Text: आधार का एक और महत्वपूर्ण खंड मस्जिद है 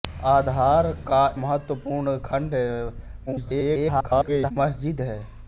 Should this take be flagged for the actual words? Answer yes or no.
yes